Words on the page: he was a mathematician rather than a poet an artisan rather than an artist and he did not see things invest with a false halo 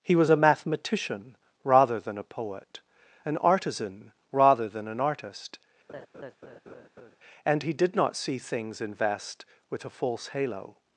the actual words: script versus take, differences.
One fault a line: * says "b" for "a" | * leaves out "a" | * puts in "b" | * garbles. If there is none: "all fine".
all fine